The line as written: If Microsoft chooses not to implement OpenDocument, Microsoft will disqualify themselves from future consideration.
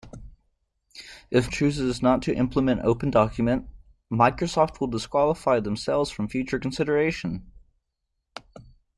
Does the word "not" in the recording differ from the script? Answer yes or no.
no